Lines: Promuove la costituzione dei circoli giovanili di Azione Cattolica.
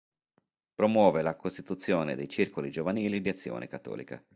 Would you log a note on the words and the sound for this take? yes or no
no